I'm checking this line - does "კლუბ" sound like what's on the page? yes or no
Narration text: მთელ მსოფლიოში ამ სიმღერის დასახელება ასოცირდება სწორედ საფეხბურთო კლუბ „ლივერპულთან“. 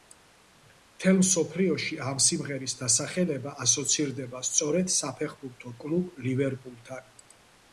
yes